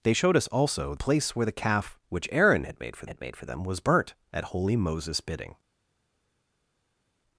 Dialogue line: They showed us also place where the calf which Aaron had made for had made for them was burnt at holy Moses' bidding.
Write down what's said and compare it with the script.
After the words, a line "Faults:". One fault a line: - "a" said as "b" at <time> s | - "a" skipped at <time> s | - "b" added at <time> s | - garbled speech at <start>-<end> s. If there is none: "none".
They showed us also place where the calf which Aaron had made for had made for them was burnt at holy Moses' bidding.
Faults:
none